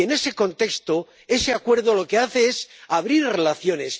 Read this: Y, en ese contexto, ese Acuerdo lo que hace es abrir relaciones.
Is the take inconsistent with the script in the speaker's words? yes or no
no